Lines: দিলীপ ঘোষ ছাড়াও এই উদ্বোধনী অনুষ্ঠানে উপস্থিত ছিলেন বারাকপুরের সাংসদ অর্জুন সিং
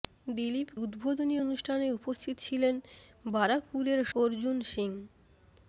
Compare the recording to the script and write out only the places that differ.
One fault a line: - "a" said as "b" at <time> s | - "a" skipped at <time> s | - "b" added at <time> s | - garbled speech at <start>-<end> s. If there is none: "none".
- "ঘোষ ছাড়াও এই" skipped at 0.7 s
- "সাংসদ" skipped at 4.0 s